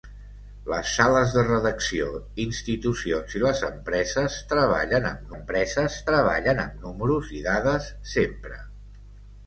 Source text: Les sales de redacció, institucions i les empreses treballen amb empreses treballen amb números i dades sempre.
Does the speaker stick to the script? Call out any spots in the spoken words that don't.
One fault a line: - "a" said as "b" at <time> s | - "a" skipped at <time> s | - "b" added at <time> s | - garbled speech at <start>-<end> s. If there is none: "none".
none